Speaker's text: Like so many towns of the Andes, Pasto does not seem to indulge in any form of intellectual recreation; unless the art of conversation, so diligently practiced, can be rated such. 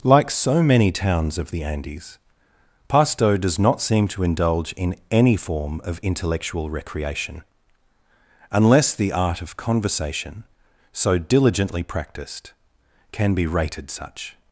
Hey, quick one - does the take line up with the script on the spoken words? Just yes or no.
yes